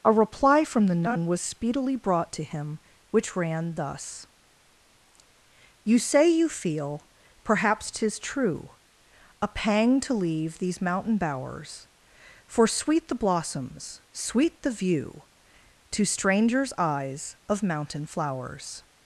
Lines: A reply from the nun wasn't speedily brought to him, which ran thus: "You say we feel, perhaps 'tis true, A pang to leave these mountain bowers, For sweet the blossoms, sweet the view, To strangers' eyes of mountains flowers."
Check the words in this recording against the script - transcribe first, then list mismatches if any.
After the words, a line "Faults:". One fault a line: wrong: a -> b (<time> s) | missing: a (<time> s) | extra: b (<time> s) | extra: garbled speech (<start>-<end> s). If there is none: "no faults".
A reply from the nun was speedily brought to him, which ran thus: "You say you feel, perhaps 'tis true, A pang to leave these mountain bowers, For sweet the blossoms, sweet the view, To strangers' eyes of mountain flowers."
Faults:
wrong: wasn't -> was (1.3 s)
wrong: we -> you (6.3 s)
wrong: mountains -> mountain (17.6 s)